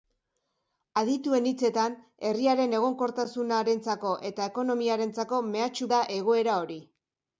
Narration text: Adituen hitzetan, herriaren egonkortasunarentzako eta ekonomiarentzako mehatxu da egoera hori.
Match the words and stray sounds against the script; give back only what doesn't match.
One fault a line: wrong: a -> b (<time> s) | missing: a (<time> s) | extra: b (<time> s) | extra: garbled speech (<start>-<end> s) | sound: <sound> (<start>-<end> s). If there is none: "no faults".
no faults